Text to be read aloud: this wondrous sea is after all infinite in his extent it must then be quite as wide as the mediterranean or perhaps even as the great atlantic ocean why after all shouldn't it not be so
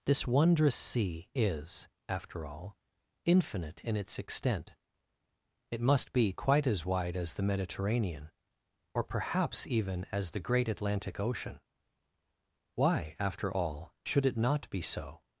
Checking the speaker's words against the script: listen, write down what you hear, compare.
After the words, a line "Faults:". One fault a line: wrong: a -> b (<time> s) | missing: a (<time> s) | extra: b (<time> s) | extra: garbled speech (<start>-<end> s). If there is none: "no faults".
this wondrous sea is after all infinite in its extent it must be quite as wide as the mediterranean or perhaps even as the great atlantic ocean why after all should it not be so
Faults:
wrong: his -> its (4.0 s)
missing: then (6.1 s)
wrong: shouldn't -> should (14.1 s)